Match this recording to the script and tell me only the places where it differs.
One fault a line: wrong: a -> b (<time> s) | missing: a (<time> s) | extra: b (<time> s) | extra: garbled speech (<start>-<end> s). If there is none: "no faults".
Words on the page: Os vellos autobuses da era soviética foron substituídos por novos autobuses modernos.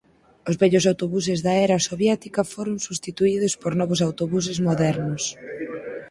no faults